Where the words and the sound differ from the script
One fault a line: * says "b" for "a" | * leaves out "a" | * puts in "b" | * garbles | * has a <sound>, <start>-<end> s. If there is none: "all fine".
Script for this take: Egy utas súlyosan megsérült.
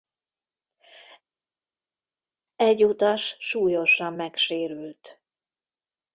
all fine